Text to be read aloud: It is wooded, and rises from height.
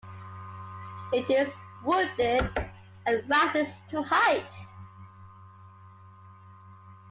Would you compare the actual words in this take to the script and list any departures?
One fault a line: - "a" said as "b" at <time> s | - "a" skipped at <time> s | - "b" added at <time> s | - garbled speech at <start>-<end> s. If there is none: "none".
- "from" said as "to" at 3.9 s